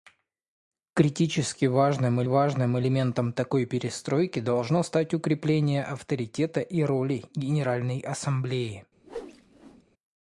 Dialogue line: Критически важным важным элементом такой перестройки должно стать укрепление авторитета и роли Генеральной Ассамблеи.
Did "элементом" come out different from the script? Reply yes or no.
no